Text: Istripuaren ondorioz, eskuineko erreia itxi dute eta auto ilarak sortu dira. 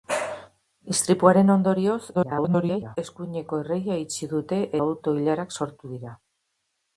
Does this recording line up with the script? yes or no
no